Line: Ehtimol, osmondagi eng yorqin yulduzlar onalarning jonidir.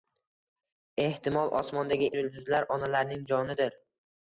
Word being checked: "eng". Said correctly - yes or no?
no